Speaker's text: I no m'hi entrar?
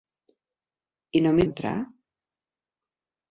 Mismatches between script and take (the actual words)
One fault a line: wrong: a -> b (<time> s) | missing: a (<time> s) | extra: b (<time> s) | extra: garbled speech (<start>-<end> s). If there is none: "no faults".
no faults